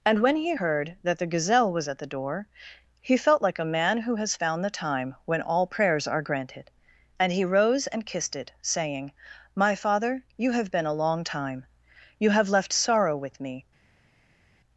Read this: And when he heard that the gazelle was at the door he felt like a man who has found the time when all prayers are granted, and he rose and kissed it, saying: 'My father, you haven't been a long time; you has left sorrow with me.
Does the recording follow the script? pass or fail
fail